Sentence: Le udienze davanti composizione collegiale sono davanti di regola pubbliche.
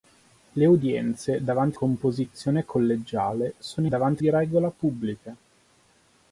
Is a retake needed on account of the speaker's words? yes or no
no